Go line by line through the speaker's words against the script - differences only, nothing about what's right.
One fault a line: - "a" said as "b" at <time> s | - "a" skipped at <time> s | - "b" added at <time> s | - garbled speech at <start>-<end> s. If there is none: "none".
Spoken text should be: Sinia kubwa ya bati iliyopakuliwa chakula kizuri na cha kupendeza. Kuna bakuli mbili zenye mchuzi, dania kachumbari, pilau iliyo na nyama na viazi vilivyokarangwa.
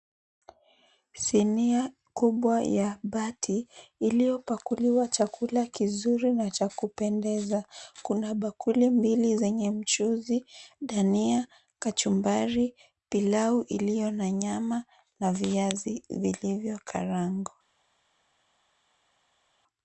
none